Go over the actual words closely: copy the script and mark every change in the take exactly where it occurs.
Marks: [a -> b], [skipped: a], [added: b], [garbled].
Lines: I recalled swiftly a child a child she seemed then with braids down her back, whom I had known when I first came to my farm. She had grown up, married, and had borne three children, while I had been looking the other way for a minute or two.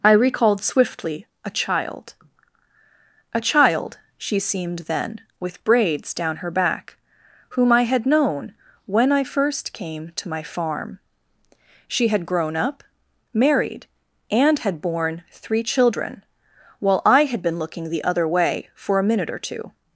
I recalled swiftly a child a child she seemed then with braids down her back, whom I had known when I first came to my farm. She had grown up, married, and had borne three children, while I had been looking the other way for a minute or two.